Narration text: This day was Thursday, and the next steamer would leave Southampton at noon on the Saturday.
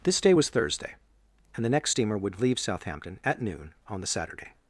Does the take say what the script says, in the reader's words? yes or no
yes